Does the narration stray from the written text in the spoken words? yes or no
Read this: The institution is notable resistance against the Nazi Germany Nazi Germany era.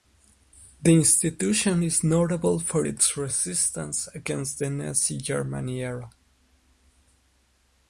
yes